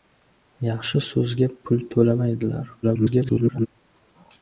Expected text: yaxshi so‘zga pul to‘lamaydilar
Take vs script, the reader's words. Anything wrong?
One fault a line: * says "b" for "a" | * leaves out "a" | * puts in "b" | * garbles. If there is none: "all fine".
* garbles